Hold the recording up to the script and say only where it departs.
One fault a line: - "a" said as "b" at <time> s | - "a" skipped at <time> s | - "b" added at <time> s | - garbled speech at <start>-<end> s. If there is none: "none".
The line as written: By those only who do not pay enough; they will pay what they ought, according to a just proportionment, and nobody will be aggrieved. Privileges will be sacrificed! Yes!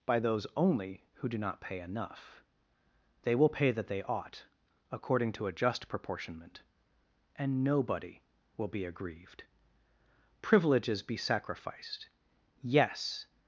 - "what" said as "that" at 3.7 s
- "will" skipped at 11.0 s